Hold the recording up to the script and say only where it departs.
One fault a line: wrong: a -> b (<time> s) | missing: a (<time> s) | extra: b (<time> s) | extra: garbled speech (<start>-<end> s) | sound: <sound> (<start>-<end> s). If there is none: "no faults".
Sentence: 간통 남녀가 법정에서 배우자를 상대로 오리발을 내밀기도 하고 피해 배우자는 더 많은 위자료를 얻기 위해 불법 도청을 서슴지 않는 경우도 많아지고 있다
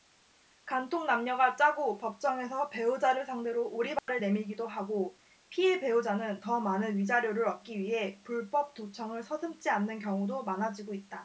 extra: 짜고 (1.6 s)
sound: dropout (4.0-4.1 s)